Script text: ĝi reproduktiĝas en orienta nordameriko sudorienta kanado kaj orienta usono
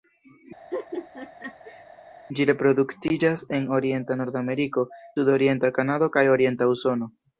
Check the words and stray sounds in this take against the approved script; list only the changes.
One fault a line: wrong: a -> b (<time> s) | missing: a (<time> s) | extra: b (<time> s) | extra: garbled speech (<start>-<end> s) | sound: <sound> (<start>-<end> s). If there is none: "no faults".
sound: laugh (0.7-1.8 s)